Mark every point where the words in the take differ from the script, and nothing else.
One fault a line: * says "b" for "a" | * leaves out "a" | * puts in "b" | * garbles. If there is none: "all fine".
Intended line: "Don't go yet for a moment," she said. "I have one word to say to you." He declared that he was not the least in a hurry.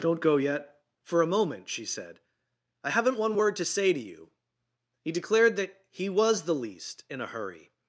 * says "haven't" for "have"
* leaves out "not"